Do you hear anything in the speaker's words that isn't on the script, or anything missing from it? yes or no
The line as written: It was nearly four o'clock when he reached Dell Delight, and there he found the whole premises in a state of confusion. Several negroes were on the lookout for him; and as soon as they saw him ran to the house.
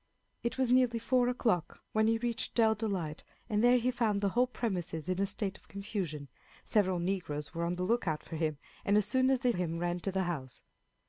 yes